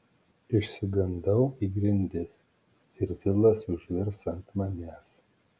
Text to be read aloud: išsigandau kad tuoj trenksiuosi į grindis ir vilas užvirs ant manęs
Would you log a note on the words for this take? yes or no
yes